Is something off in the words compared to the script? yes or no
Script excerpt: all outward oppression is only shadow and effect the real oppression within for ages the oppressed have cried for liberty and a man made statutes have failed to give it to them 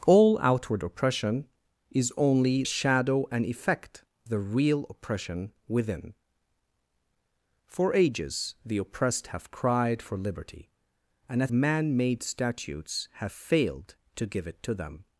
no